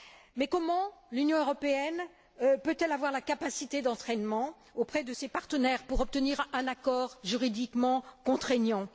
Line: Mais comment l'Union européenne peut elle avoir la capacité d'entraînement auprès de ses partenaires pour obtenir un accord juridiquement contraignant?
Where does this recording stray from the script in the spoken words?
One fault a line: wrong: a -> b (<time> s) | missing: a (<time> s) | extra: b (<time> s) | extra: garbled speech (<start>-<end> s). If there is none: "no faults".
no faults